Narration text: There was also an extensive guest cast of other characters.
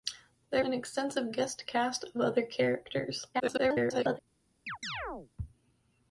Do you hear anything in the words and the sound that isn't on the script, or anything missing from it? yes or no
yes